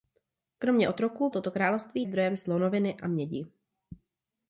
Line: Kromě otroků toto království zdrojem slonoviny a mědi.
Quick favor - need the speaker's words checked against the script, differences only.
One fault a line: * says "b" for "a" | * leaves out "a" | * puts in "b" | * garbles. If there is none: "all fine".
all fine